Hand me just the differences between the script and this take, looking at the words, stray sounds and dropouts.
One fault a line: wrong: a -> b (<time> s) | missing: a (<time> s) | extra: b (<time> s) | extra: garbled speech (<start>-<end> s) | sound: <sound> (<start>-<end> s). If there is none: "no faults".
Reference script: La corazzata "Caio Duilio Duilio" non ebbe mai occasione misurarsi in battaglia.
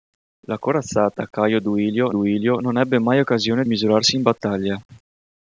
no faults